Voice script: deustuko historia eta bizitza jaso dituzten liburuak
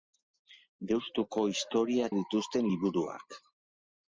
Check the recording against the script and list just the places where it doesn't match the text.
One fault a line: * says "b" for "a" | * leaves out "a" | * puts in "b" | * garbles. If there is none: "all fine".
* leaves out "eta bizitza jaso"